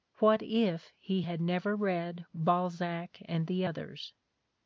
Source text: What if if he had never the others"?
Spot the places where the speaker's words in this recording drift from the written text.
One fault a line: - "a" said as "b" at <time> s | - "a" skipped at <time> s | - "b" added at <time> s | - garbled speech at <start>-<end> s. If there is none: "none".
- "if" skipped at 0.9 s
- "read Balzac and" added at 1.8 s